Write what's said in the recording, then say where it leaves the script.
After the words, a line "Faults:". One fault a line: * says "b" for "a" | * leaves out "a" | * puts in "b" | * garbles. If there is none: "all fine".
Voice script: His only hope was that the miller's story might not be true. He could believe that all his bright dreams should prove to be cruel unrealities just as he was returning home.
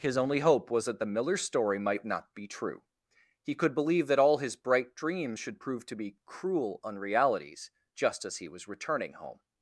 His only hope was that the miller's story might not be true. He could believe that all his bright dreams should prove to be cruel unrealities just as he was returning home.
Faults:
all fine